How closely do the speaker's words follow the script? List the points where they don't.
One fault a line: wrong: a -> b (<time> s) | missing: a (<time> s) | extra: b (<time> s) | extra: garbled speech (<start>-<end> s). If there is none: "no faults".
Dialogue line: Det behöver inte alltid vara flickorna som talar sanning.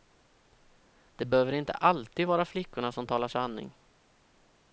no faults